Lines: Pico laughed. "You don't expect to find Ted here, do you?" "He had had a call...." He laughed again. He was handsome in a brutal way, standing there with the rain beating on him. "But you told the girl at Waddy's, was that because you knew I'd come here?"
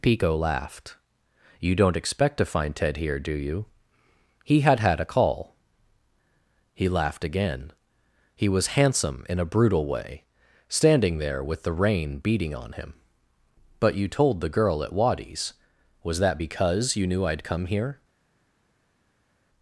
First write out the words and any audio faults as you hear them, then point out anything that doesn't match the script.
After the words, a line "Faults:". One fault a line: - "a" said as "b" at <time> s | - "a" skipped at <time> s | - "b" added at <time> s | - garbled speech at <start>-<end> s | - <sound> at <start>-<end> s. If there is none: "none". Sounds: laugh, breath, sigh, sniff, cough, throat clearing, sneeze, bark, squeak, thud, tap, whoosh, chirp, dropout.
Pico laughed. "You don't expect to find Ted here, do you?" "He had had a call...." He laughed again. He was handsome in a brutal way, standing there with the rain beating on him. "But you told the girl at Waddy's, was that because you knew I'd come here?"
Faults:
none